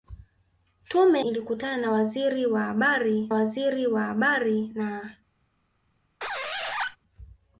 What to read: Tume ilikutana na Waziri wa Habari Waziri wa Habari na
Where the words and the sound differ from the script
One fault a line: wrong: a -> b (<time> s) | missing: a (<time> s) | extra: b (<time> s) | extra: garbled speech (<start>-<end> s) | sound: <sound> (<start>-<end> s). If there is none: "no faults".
sound: squeak (6.2-7.0 s)